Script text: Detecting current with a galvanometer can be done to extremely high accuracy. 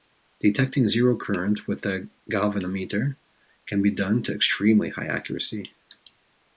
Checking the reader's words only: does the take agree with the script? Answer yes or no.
no